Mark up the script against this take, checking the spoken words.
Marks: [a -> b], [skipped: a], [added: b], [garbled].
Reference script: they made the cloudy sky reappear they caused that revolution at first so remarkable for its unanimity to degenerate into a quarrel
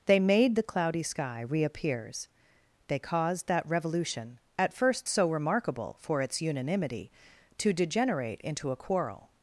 they made the cloudy sky [reappear -> reappears] they caused that revolution at first so remarkable for its unanimity to degenerate into a quarrel